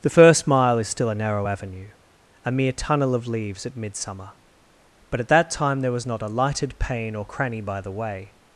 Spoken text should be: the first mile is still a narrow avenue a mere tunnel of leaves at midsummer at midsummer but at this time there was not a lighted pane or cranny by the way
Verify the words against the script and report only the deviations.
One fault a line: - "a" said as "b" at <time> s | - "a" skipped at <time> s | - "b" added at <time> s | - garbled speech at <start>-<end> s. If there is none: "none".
- "at midsummer" skipped at 4.3 s
- "this" said as "that" at 5.3 s